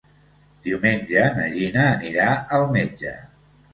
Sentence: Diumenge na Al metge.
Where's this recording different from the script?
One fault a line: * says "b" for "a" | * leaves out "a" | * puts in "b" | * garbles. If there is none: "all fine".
* puts in "Gina anirà"